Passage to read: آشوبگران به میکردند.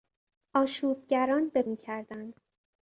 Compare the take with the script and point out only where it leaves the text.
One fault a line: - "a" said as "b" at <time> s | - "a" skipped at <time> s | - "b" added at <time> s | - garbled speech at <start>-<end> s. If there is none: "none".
none